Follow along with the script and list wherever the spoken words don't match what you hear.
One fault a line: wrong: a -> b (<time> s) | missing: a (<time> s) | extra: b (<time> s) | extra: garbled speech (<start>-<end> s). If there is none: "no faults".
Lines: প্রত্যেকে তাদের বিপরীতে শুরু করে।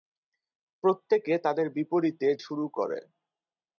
no faults